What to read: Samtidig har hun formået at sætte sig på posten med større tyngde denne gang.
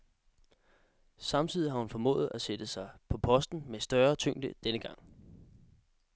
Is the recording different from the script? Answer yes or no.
no